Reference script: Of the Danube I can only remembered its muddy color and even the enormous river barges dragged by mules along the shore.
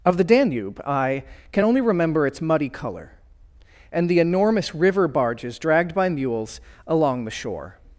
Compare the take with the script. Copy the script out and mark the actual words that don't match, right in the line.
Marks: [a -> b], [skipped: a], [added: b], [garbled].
Of the Danube I can only [remembered -> remember] its muddy color and [skipped: even] the enormous river barges dragged by mules along the shore.